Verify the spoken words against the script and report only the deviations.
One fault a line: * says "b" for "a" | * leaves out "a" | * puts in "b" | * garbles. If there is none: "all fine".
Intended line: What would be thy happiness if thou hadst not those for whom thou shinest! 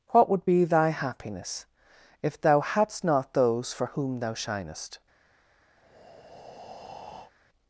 all fine